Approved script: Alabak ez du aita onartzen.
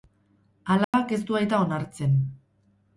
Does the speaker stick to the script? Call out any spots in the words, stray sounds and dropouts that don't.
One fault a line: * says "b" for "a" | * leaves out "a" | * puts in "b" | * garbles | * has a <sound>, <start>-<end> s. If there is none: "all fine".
* has a dropout, 0.8-0.9 s